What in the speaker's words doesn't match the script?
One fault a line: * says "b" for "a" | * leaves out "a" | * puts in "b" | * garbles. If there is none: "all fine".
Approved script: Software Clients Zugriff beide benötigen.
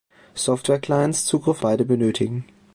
all fine